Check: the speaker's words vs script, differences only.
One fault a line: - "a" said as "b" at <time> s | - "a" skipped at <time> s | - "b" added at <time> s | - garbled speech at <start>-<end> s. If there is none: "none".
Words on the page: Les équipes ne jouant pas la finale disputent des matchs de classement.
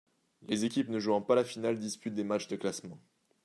none